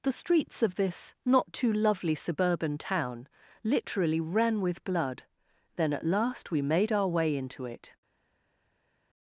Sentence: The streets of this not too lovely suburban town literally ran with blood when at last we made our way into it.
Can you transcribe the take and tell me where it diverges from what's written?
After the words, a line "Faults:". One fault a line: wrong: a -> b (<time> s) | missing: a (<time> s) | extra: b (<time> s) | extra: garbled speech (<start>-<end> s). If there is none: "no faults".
The streets of this not too lovely suburban town literally ran with blood then at last we made our way into it.
Faults:
wrong: when -> then (5.8 s)